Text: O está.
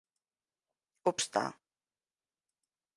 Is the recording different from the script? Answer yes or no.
no